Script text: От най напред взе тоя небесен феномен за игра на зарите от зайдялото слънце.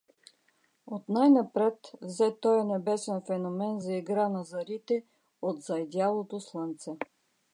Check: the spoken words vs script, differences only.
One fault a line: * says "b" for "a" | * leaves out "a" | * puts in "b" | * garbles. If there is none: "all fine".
all fine